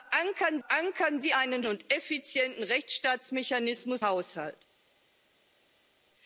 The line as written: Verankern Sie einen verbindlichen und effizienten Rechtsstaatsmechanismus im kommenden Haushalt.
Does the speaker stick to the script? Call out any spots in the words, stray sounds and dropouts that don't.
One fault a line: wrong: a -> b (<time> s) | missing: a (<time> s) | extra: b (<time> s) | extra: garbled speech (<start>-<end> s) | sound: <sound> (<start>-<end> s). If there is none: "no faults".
extra: verankern (0.7 s)
missing: verbindlichen (1.6 s)
missing: im kommenden (4.0 s)